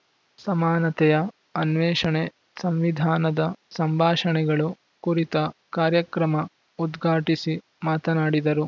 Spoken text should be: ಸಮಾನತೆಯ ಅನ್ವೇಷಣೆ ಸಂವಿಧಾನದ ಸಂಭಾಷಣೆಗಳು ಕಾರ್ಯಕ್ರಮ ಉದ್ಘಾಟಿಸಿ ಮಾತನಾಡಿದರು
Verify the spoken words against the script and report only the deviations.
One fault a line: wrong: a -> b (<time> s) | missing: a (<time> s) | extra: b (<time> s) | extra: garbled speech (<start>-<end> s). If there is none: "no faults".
extra: ಕುರಿತ (5.0 s)